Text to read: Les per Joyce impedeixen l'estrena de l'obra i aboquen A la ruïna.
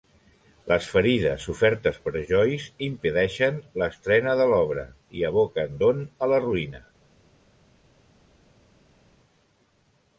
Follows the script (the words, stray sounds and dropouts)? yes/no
no